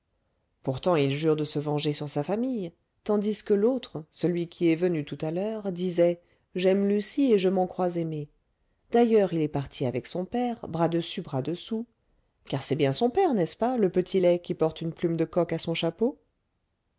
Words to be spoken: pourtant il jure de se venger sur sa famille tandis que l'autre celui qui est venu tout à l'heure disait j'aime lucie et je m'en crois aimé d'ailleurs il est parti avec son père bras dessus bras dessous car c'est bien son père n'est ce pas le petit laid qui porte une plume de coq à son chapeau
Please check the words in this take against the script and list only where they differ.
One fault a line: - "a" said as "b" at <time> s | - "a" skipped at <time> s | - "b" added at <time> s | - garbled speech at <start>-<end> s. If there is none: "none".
none